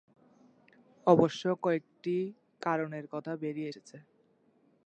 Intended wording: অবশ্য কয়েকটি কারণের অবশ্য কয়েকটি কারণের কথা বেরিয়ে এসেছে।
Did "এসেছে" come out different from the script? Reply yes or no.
no